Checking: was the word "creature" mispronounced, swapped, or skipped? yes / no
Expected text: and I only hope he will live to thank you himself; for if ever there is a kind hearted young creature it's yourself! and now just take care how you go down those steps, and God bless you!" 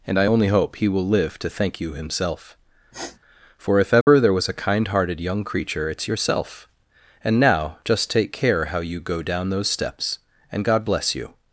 no